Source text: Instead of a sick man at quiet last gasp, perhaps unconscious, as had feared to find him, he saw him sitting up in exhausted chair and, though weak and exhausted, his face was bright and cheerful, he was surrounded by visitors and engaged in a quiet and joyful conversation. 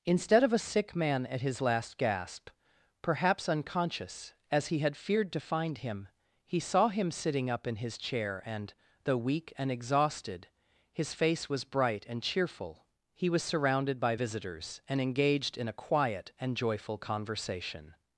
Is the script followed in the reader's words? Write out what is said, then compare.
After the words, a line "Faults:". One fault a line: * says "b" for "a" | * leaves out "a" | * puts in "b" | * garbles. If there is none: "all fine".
Instead of a sick man at his last gasp, perhaps unconscious, as he had feared to find him, he saw him sitting up in his chair and, though weak and exhausted, his face was bright and cheerful, he was surrounded by visitors and engaged in a quiet and joyful conversation.
Faults:
* says "his" for "quiet"
* puts in "he"
* says "his" for "exhausted"